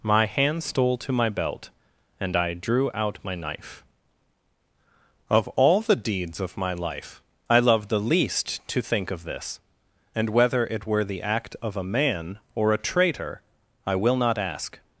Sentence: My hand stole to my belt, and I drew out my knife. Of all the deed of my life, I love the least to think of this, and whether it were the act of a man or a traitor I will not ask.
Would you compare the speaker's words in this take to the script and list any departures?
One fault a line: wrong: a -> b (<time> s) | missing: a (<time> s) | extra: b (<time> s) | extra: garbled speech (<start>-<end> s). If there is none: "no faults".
wrong: deed -> deeds (6.0 s)